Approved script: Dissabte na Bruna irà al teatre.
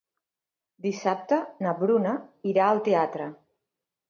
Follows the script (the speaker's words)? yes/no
yes